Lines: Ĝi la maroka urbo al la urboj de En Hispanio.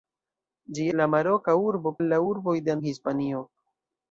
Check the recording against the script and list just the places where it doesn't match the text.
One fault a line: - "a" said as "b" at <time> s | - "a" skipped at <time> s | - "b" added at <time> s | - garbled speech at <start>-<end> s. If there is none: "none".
none